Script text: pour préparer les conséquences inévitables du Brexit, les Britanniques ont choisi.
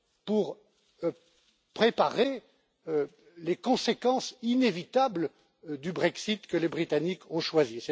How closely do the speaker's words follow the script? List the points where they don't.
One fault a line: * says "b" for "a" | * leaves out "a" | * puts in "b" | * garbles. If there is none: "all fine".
* puts in "que"